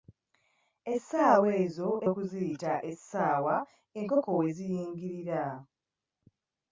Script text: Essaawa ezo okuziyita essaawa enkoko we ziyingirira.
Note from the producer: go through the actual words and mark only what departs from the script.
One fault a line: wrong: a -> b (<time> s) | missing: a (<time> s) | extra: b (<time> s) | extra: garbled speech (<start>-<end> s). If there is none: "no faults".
no faults